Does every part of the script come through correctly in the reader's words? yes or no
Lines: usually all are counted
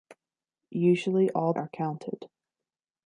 yes